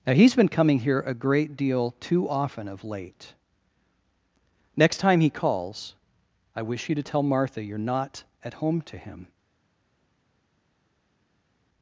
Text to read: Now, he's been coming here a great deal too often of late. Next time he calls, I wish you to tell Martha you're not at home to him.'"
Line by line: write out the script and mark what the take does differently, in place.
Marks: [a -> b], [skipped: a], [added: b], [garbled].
Now, he's been coming here a great deal too often of late. Next time he calls, I wish you to tell Martha you're not at home to him.'"